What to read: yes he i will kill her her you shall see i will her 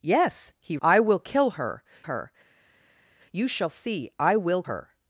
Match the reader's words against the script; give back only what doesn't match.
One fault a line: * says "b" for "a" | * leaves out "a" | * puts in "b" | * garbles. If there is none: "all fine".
all fine